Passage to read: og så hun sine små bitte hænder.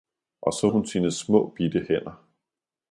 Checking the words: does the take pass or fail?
pass